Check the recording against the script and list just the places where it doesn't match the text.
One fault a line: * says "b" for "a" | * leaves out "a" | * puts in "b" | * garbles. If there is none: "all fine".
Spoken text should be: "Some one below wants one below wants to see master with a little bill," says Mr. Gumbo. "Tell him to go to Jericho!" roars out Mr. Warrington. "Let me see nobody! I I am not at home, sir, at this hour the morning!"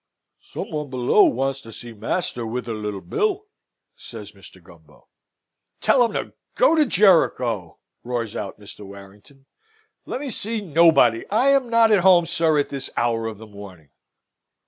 * leaves out "one below wants"
* leaves out "I"
* puts in "of"